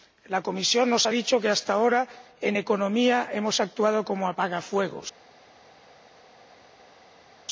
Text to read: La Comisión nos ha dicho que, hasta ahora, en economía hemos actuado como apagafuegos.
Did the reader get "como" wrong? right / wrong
right